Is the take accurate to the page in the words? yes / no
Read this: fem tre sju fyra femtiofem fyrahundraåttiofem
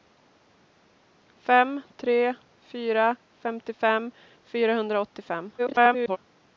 no